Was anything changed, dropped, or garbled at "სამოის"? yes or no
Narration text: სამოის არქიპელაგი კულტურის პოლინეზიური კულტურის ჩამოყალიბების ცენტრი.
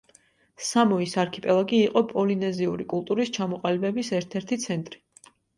no